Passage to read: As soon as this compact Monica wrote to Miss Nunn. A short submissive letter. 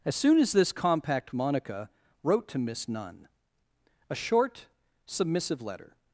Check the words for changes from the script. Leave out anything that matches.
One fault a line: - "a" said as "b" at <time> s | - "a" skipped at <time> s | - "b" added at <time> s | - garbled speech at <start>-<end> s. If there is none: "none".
none